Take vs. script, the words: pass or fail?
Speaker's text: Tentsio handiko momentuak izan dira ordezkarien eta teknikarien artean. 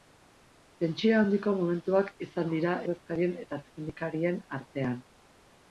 pass